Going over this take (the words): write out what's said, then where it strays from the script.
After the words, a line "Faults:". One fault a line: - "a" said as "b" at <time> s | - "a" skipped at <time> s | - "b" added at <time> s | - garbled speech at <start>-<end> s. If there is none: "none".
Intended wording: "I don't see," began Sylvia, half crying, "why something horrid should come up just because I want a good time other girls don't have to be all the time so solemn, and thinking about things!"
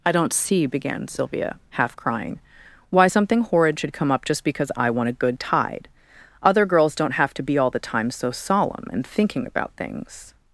"I don't see," began Sylvia, half crying, "why something horrid should come up just because I want a good tide other girls don't have to be all the time so solemn, and thinking about things!"
Faults:
- "time" said as "tide" at 5.4 s